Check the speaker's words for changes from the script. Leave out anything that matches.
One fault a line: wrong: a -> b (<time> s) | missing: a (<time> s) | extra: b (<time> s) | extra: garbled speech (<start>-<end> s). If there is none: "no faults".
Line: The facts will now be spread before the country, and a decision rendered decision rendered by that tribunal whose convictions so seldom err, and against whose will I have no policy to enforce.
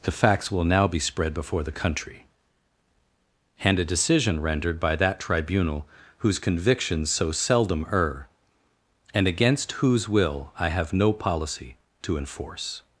missing: decision rendered (4.8 s)